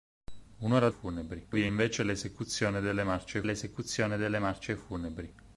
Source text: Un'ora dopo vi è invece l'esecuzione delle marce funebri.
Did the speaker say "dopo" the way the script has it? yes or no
no